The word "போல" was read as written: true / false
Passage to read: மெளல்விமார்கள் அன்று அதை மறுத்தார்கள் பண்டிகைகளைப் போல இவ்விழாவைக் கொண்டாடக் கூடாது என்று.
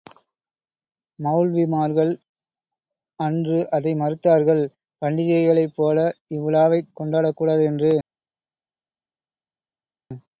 true